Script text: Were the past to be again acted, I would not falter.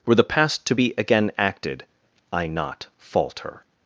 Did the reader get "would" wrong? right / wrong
wrong